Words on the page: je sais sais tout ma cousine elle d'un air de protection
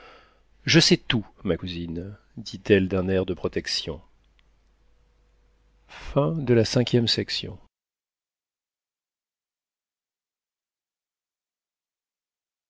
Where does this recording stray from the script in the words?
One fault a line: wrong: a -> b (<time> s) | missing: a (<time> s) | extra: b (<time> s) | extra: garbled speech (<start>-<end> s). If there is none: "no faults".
missing: sais (1.0 s)
extra: dit (2.4 s)